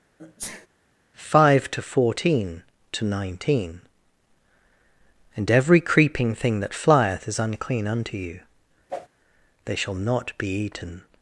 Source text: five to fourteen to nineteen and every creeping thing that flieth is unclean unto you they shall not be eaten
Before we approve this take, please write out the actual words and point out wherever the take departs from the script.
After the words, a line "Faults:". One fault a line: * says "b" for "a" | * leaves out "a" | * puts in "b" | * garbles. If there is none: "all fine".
five to fourteen to nineteen and every creeping thing that flieth is unclean unto you they shall not be eaten
Faults:
all fine